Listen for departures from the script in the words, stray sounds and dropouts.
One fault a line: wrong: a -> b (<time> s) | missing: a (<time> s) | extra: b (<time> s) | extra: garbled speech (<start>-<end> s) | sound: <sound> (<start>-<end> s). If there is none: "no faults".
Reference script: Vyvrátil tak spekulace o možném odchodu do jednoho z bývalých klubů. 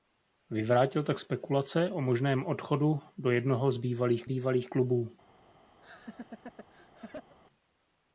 extra: bývalých (4.2 s)
sound: laugh (5.8-7.4 s)